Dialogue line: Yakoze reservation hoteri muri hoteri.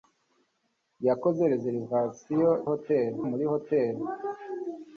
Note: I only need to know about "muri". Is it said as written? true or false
true